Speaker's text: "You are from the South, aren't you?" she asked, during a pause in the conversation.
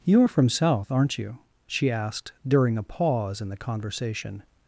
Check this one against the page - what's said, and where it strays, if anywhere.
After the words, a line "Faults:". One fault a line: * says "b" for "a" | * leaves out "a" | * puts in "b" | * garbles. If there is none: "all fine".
"You are from South, aren't you?" she asked, during a pause in the conversation.
Faults:
* leaves out "the"